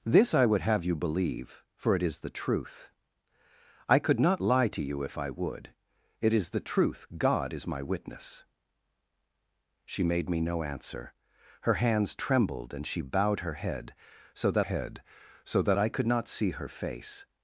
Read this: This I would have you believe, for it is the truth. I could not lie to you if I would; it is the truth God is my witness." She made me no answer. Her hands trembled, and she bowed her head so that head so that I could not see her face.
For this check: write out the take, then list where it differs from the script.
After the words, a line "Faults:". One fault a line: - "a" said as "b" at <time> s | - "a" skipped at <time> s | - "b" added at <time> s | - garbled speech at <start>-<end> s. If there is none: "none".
This I would have you believe, for it is the truth. I could not lie to you if I would; it is the truth God is my witness." She made me no answer. Her hands trembled, and she bowed her head so that head so that I could not see her face.
Faults:
none